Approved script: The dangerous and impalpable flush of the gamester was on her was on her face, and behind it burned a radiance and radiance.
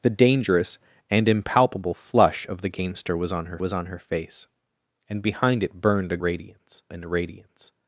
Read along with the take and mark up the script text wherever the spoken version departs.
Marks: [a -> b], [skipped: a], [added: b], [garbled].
The dangerous and impalpable flush of the gamester was on her was on her face, and behind it burned a radiance and radiance.